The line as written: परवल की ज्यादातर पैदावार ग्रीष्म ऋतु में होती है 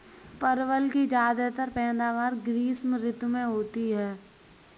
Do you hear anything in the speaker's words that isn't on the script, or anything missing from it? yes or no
no